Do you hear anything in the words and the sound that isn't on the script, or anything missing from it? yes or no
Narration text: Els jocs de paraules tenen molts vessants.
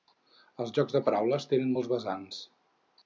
no